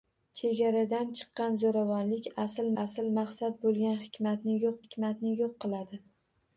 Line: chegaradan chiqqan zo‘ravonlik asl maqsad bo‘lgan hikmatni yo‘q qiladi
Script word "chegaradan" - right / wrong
right